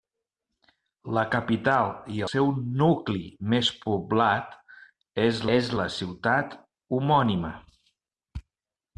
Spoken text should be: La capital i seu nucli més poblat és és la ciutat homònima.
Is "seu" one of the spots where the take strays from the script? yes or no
no